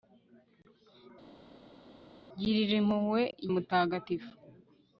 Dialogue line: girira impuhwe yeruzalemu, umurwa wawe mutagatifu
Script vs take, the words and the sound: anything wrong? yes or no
yes